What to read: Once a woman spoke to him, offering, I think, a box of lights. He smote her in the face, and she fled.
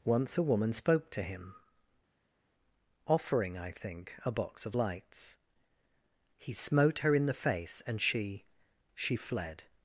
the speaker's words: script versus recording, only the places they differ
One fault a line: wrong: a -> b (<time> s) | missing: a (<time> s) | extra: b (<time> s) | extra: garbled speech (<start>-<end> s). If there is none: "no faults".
extra: she (8.9 s)